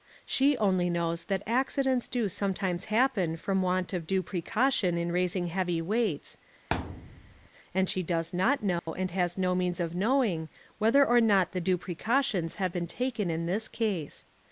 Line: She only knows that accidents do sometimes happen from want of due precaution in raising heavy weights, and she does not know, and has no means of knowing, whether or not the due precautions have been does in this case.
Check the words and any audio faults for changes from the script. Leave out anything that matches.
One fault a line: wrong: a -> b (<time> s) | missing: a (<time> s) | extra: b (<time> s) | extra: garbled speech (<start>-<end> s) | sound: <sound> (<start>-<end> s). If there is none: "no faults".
sound: thud (6.7-7.5 s)
sound: dropout (8.8-8.9 s)
wrong: does -> taken (12.9 s)